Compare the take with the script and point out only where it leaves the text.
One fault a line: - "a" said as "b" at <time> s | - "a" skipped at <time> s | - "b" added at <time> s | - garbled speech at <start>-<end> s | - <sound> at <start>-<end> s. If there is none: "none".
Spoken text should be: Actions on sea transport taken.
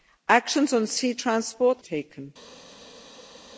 none